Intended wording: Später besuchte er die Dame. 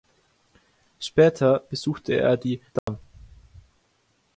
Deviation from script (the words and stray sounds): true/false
true